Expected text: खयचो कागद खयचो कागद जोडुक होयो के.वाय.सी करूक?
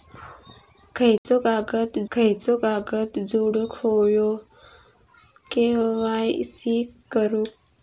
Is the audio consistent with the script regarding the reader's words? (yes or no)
yes